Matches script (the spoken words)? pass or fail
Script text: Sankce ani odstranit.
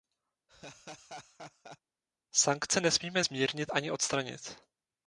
fail